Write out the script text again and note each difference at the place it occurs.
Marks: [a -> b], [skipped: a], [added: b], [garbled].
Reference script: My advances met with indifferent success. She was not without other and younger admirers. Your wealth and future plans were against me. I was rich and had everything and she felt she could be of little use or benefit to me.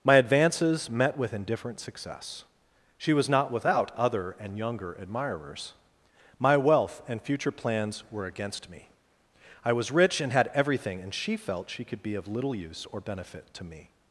My advances met with indifferent success. She was not without other and younger admirers. [Your -> My] wealth and future plans were against me. I was rich and had everything and she felt she could be of little use or benefit to me.